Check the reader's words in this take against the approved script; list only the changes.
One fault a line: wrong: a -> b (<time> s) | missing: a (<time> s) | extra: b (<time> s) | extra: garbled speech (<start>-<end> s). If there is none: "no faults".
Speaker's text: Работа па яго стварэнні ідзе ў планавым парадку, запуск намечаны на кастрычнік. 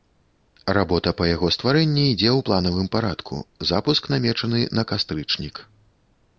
no faults